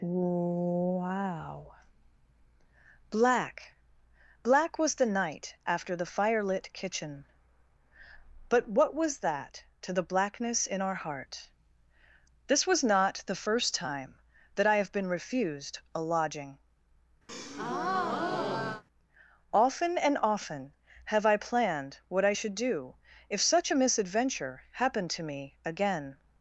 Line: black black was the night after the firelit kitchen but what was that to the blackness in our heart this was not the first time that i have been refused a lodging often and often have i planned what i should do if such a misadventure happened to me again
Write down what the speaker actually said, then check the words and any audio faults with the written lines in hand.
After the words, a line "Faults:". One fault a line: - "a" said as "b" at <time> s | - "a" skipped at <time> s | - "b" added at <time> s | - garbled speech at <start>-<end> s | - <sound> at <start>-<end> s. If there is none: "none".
wow black black was the night after the firelit kitchen but what was that to the blackness in our heart this was not the first time that i have been refused a lodging often and often have i planned what i should do if such a misadventure happened to me again
Faults:
- "wow" added at 0.0 s
- breath at 17.3-18.8 s